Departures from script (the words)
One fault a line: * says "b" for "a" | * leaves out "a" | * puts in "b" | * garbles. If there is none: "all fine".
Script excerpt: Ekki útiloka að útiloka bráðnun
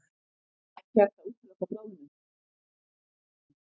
* says "hægt" for "útiloka"